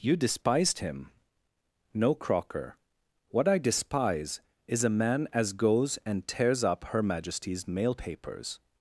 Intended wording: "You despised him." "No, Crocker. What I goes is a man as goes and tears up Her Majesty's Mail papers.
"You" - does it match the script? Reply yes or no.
yes